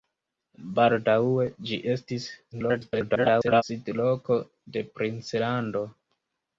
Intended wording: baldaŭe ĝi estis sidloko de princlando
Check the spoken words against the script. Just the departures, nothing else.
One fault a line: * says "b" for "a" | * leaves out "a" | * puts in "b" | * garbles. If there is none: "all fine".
* garbles